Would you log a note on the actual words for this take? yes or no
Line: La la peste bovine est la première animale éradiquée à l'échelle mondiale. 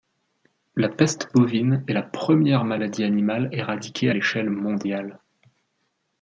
yes